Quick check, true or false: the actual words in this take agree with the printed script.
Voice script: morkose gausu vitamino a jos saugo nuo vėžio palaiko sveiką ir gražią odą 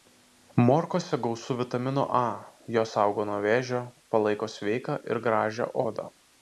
true